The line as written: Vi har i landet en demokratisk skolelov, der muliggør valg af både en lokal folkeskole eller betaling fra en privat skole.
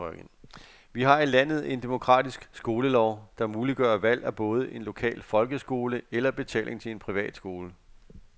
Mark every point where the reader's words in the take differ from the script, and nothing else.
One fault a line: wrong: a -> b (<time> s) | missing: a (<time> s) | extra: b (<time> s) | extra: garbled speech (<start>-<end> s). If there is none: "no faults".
wrong: fra -> til (6.8 s)